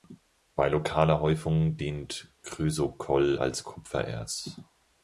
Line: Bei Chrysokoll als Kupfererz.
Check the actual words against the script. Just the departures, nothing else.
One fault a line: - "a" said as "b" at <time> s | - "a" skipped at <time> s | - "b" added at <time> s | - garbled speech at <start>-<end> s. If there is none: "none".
- "lokaler Häufung dient" added at 0.7 s